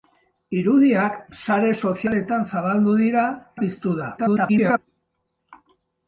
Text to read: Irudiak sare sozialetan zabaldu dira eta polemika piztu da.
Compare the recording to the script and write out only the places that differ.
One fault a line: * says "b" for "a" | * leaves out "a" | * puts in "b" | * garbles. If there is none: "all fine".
* leaves out "eta polemika"
* garbles